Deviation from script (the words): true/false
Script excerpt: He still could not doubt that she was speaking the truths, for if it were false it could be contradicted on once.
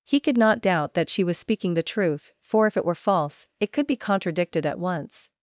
true